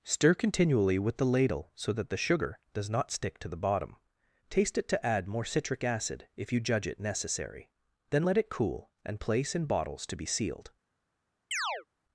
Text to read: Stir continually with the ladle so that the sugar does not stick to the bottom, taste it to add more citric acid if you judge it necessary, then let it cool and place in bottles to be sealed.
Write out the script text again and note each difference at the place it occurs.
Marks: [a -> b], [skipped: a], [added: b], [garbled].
Stir continually with the ladle so that the sugar does not stick to the bottom, taste it to add more citric acid if you judge it necessary, then let it cool and place in bottles to be sealed.